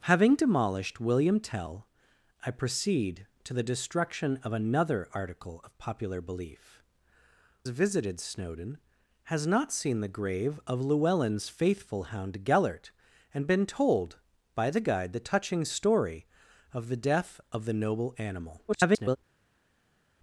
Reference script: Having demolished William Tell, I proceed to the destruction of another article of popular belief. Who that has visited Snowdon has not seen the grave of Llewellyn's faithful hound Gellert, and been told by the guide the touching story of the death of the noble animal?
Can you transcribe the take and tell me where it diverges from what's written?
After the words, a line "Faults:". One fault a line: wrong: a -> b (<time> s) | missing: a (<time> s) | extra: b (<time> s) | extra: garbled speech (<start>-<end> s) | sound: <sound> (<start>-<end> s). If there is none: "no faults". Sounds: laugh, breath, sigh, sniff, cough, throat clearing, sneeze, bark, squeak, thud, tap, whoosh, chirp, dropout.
Having demolished William Tell, I proceed to the destruction of another article of popular belief. Visited Snowdon has not seen the grave of Llewellyn's faithful hound Gellert, and been told by the guide the touching story of the death of the noble animal? [garbled]
Faults:
missing: Who that has (6.8 s)
extra: garbled speech (18.7-19.2 s)